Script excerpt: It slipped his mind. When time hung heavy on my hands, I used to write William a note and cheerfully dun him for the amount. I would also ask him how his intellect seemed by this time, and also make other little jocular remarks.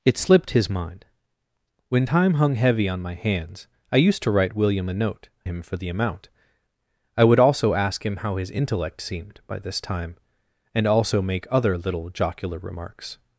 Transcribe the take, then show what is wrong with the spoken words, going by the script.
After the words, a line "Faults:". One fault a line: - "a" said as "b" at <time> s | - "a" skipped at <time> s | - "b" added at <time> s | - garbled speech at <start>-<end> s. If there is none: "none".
It slipped his mind. When time hung heavy on my hands, I used to write William a note him for the amount. I would also ask him how his intellect seemed by this time, and also make other little jocular remarks.
Faults:
- "and cheerfully dun" skipped at 5.3 s